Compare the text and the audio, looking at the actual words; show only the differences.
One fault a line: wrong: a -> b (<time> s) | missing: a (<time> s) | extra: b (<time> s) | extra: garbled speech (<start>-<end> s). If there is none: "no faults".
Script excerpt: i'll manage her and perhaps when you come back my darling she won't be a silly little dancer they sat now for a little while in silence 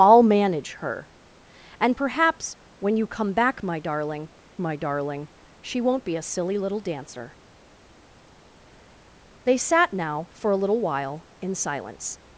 extra: my darling (4.6 s)